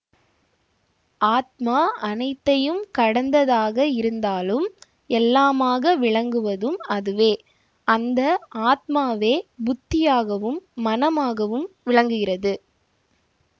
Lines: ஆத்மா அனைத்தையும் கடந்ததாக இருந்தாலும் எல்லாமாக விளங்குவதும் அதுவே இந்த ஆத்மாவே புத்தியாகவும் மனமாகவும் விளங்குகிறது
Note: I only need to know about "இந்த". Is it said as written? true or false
false